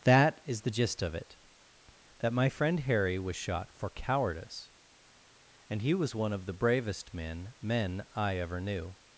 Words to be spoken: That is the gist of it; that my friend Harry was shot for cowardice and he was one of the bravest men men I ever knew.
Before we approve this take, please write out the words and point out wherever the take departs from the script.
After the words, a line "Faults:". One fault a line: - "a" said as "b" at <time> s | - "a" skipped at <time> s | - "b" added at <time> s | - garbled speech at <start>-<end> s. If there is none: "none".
That is the gist of it; that my friend Harry was shot for cowardice and he was one of the bravest men men I ever knew.
Faults:
none